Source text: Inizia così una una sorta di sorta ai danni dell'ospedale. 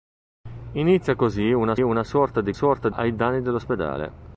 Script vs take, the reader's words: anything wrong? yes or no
no